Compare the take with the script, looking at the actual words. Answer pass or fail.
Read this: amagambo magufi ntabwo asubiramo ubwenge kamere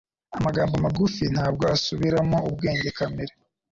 pass